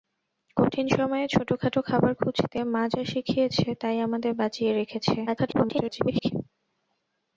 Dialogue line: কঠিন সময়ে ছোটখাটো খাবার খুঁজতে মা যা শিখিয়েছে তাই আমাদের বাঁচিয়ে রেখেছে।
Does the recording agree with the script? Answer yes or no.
no